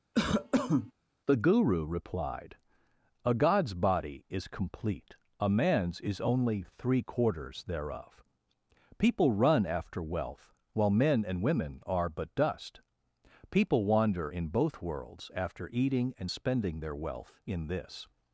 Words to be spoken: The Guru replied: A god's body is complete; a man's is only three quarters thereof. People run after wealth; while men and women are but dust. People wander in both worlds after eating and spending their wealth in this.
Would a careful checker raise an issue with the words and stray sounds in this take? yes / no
yes